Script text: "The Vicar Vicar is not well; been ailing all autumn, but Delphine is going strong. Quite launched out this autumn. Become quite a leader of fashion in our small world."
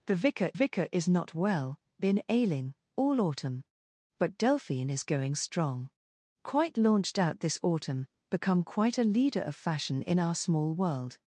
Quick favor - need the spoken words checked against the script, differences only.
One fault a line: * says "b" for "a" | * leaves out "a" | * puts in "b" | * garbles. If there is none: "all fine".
all fine